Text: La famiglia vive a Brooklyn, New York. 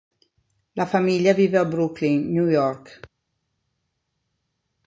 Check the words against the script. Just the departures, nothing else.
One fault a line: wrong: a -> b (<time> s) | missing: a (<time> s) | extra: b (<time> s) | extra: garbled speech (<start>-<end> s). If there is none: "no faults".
no faults